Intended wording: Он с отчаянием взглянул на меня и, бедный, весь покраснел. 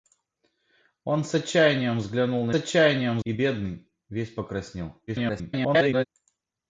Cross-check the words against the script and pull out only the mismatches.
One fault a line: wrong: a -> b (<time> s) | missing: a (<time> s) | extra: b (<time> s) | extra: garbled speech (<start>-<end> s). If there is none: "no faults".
wrong: меня -> отчаянием (2.5 s)
extra: garbled speech (5.1-6.1 s)